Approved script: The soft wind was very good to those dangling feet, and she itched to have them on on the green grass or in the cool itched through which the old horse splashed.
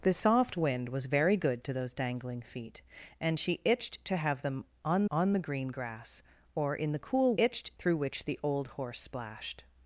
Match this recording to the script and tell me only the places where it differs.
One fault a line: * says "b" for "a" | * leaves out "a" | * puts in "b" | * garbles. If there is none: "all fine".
all fine